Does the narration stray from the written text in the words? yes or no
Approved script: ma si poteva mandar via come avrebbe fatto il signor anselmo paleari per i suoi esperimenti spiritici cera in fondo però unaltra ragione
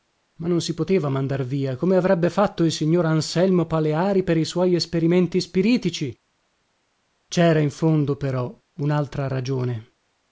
yes